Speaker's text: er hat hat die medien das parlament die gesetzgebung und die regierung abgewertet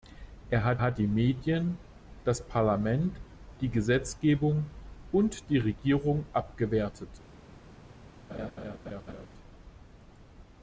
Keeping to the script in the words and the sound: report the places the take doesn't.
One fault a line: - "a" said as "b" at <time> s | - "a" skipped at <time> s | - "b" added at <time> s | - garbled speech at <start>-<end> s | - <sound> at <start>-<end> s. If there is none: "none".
- laugh at 8.3-9.3 s